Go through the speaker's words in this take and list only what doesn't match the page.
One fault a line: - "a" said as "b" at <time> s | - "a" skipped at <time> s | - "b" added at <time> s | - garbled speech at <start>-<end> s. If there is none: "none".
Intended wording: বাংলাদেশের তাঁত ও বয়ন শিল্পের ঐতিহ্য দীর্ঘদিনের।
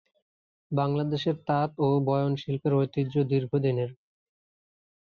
none